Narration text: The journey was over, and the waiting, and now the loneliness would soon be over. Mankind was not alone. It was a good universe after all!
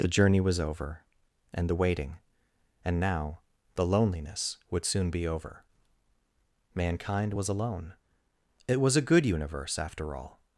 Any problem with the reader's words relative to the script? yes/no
yes